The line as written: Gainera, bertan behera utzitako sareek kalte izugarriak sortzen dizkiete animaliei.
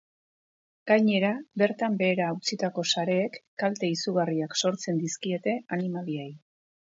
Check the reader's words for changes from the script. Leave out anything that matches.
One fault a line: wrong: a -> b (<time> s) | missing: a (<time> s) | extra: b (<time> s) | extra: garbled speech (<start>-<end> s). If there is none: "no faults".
no faults